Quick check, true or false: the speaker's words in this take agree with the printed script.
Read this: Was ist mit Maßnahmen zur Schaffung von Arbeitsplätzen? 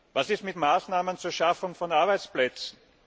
true